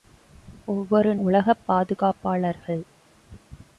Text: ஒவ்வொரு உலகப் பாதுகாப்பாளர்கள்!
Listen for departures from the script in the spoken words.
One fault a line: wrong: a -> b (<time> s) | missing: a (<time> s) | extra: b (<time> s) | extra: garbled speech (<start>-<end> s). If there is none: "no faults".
no faults